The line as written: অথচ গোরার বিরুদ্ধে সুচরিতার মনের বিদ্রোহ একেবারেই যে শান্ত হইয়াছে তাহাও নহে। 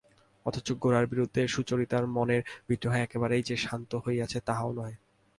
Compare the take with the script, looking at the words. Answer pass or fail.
pass